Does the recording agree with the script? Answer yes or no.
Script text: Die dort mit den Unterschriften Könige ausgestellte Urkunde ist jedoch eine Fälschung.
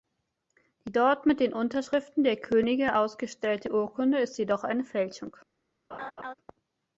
no